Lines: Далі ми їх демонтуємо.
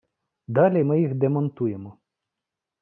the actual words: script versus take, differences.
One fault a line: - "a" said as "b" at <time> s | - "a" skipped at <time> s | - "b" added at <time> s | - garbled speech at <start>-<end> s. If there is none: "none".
none